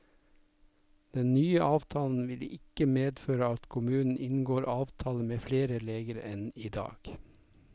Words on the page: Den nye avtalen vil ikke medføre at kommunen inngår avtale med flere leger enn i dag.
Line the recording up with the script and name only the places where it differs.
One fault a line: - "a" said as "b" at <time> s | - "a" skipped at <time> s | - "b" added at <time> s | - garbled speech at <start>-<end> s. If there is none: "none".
none